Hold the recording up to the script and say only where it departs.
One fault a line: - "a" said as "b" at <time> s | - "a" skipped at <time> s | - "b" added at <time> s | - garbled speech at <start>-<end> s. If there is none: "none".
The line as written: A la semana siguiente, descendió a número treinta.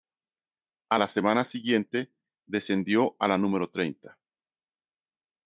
- "la" added at 3.3 s